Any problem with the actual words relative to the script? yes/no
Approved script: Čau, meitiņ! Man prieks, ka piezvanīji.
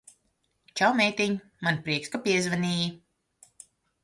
no